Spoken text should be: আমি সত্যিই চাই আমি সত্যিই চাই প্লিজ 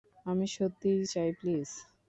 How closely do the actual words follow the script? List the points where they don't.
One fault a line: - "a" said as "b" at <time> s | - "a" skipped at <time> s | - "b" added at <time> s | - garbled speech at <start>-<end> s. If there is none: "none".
- "আমি সত্যিই চাই" skipped at 1.3 s